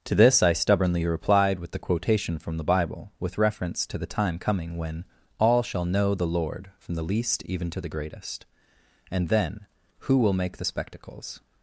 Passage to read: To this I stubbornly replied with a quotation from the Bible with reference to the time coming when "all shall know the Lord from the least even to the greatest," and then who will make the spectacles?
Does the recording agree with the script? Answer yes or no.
no